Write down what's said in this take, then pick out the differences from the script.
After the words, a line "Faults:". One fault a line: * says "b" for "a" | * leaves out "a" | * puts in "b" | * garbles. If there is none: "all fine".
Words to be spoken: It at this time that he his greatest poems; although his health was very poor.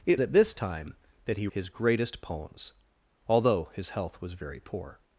It at this time that he his greatest poems; although his health was very poor.
Faults:
all fine